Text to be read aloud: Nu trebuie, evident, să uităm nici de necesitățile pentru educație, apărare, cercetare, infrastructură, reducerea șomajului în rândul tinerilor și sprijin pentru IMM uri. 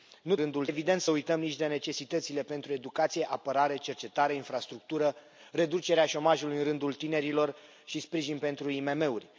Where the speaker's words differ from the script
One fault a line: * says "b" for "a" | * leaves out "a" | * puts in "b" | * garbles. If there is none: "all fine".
* says "rândul" for "trebuie"